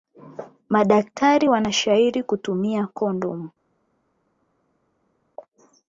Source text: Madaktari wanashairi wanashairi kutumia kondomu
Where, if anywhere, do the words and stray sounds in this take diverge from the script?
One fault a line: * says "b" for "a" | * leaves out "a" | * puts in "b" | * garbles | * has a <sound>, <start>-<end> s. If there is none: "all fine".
* leaves out "wanashairi"